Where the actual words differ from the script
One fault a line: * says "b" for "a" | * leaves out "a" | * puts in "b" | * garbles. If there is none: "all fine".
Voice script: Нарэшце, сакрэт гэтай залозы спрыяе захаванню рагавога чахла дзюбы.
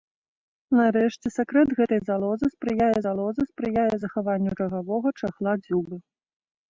* puts in "залозы спрыяе"